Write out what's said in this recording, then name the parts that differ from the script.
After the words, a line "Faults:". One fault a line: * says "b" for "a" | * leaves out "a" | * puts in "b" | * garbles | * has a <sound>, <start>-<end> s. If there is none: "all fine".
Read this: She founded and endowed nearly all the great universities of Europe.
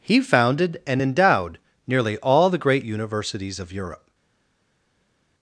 He founded and endowed nearly all the great universities of Europe.
Faults:
* says "He" for "She"